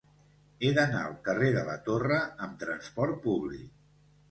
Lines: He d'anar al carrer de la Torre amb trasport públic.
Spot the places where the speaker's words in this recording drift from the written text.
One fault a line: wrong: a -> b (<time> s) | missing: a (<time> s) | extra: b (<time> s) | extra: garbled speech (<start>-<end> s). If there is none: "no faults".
no faults